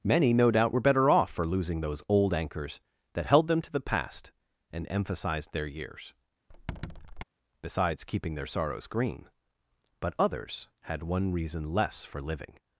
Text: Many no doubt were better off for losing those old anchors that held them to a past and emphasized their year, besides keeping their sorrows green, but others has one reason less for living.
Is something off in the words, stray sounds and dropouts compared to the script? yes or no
yes